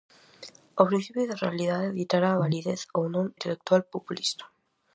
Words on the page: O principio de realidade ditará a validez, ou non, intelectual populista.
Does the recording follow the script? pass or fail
pass